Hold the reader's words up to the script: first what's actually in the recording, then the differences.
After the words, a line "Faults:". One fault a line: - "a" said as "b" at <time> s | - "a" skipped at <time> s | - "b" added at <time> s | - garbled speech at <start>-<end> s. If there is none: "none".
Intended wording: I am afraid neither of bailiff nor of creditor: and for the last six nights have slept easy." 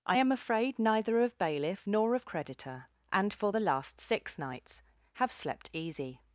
I am afraid neither of bailiff nor of creditor: and for the last six nights have slept easy."
Faults:
none